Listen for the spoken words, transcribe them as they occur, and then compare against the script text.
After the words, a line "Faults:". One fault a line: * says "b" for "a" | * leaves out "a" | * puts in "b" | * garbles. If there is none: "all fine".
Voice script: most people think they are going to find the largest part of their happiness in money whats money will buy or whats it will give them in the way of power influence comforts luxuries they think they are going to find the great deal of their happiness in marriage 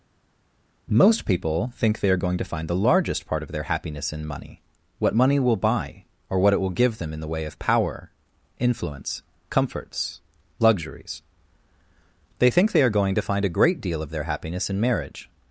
most people think they are going to find the largest part of their happiness in money what money will buy or what it will give them in the way of power influence comforts luxuries they think they are going to find a great deal of their happiness in marriage
Faults:
* says "what" for "whats"
* says "what" for "whats"
* says "a" for "the"